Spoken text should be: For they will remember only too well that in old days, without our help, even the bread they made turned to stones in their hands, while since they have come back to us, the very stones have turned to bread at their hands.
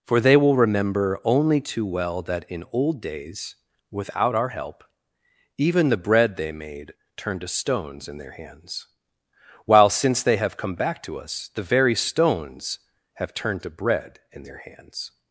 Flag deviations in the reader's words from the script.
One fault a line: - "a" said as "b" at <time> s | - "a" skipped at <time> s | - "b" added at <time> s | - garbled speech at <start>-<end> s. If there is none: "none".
- "at" said as "in" at 14.3 s